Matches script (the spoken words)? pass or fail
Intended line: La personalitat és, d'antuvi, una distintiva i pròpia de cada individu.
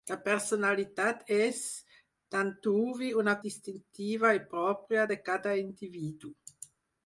pass